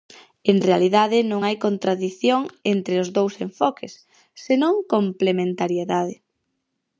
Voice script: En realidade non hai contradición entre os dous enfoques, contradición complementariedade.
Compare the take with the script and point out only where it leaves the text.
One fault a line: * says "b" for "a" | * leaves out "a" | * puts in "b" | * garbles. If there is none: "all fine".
* says "senón" for "contradición"